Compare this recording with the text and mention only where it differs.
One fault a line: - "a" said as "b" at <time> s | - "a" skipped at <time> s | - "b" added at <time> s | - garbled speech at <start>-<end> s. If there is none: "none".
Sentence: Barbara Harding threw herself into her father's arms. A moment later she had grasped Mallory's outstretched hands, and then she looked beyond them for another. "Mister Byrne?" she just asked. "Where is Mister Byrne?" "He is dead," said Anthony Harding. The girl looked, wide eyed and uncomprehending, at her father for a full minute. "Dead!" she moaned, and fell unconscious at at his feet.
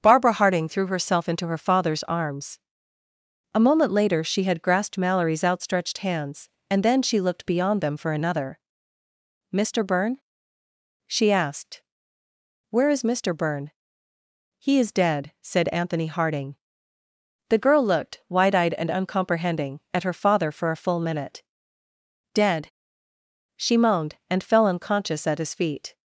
- "just" skipped at 11.3 s
- "at" skipped at 25.4 s